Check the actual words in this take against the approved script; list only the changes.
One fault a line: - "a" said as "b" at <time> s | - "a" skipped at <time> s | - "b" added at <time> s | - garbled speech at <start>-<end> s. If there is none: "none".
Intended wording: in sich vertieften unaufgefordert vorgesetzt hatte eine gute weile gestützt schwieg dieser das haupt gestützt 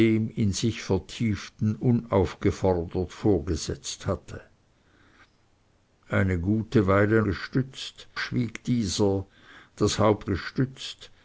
none